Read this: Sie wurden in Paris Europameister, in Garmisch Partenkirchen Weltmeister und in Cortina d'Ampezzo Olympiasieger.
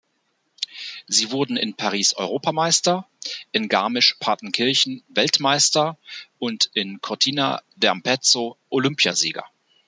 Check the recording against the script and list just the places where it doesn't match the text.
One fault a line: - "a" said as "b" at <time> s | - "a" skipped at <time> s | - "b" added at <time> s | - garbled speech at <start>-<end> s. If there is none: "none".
none